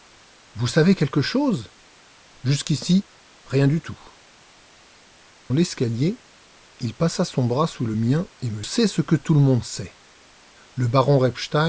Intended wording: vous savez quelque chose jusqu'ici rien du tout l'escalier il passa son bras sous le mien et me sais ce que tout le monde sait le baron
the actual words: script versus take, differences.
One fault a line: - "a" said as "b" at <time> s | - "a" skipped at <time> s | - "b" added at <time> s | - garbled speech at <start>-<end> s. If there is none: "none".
none